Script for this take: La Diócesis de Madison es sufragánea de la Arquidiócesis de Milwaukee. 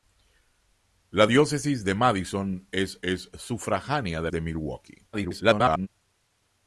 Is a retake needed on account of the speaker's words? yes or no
yes